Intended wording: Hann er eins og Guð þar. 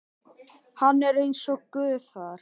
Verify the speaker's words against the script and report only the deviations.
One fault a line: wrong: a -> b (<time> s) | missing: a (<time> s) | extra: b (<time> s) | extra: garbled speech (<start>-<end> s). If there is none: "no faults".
no faults